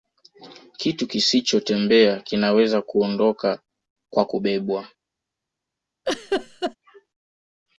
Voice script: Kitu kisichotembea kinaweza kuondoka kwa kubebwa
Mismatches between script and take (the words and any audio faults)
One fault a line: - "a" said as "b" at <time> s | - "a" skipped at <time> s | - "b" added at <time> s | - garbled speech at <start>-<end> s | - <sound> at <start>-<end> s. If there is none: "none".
- laugh at 6.1-6.8 s